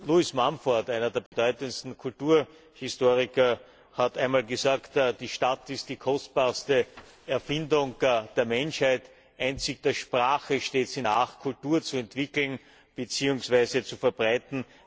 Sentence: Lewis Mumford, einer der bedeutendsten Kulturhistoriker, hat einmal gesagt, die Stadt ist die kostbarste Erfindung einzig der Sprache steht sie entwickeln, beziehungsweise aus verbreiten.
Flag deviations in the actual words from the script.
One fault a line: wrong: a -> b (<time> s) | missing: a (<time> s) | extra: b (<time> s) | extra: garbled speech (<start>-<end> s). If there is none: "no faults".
extra: der Menschheit (8.0 s)
extra: nach Kultur zu (11.0 s)
wrong: aus -> zu (13.8 s)